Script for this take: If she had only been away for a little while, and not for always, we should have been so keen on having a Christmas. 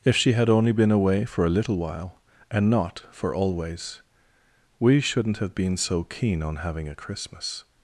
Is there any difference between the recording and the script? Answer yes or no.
yes